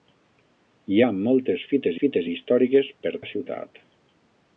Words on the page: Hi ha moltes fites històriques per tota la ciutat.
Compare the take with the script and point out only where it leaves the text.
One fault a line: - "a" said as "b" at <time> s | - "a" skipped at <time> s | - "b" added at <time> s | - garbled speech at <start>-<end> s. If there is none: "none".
- "fites" added at 2.0 s
- "tota" skipped at 3.1 s